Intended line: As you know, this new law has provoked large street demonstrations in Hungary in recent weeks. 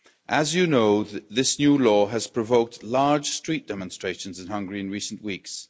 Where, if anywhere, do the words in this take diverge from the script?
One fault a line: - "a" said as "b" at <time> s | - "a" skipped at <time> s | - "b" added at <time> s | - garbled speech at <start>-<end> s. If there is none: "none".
none